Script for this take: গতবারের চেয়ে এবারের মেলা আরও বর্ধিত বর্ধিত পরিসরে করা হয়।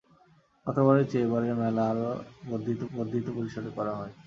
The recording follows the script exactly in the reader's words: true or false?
true